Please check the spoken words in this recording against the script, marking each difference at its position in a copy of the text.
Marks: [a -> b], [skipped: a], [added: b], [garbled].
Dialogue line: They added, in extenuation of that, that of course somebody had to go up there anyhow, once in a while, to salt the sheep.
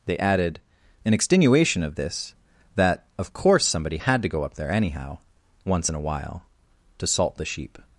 They added, in extenuation of [that, -> this] that of course somebody had to go up there anyhow, once in a while, to salt the sheep.